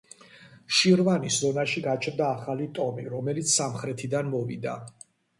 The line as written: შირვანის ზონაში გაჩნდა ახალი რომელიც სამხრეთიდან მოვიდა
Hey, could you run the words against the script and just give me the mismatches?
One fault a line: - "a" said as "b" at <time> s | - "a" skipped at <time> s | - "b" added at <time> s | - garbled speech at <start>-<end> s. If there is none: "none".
- "ტომი" added at 2.8 s